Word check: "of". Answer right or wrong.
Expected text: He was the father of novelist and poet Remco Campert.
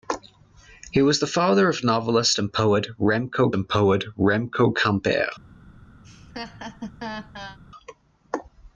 right